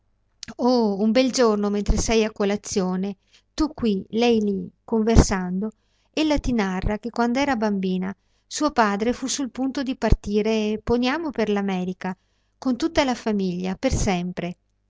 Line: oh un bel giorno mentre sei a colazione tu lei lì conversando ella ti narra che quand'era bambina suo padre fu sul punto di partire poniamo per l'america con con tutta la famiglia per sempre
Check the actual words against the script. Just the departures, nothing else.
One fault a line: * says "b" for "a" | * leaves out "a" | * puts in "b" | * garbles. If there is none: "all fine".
* puts in "qui"
* leaves out "con"